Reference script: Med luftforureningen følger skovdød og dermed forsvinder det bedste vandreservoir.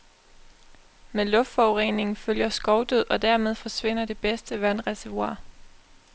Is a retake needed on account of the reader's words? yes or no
no